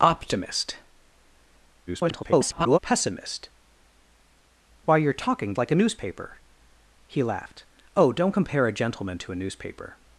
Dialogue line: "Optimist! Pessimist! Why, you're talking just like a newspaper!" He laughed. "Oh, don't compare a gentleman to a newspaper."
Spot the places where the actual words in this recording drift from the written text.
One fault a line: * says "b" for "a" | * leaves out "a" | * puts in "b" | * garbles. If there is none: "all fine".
* garbles
* leaves out "just"